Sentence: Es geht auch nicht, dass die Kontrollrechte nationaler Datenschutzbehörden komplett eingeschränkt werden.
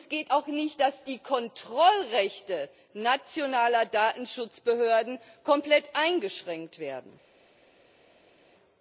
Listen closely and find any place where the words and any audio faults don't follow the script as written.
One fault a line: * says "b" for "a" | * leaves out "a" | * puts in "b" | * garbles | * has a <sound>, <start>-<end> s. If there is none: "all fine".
all fine